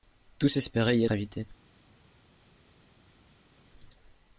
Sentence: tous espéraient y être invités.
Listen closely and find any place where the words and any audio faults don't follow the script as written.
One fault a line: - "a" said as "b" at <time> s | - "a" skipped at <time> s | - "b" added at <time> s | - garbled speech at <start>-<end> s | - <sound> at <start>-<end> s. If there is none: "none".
- "être" skipped at 1.1 s